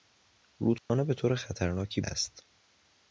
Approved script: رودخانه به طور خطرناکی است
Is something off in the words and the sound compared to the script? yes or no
yes